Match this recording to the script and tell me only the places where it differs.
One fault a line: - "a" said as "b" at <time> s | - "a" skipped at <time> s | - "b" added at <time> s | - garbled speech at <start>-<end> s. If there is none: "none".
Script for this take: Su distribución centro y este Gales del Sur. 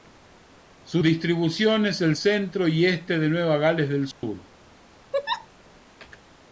- "es el" added at 1.8 s
- "de Nueva" added at 3.2 s